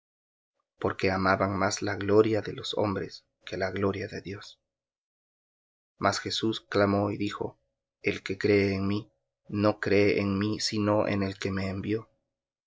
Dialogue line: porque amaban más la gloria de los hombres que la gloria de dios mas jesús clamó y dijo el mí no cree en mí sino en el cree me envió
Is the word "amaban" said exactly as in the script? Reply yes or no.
yes